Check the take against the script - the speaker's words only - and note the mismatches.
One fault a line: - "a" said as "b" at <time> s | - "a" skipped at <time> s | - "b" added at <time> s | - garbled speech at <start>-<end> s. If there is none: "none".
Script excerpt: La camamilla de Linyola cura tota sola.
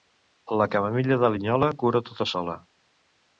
none